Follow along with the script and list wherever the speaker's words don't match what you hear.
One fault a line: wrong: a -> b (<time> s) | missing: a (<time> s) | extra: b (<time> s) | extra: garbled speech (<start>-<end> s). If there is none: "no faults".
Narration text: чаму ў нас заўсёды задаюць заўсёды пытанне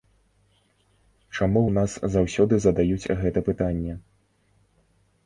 wrong: заўсёды -> гэта (3.2 s)